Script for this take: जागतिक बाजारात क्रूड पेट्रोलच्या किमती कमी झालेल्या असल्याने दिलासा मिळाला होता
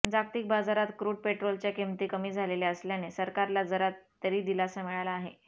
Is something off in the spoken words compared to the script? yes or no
yes